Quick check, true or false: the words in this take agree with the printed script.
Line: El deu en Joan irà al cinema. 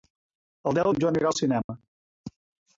true